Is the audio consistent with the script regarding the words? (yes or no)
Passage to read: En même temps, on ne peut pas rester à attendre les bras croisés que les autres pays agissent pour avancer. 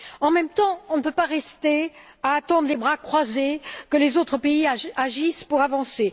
yes